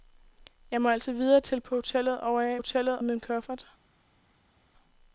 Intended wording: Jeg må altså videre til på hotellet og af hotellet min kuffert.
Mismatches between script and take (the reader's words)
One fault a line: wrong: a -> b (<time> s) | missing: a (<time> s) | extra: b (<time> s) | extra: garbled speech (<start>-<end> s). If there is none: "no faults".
no faults